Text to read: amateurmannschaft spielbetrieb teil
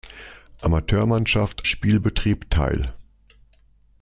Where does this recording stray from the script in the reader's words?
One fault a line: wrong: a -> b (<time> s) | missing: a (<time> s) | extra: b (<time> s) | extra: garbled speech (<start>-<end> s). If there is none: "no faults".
no faults